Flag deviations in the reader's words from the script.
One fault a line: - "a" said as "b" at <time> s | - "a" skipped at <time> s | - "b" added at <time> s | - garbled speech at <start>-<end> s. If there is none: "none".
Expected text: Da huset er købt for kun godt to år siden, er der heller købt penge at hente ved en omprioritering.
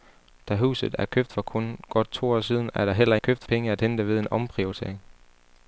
none